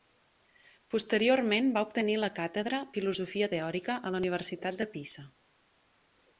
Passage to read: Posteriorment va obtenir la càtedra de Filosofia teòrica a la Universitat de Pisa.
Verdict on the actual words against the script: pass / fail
fail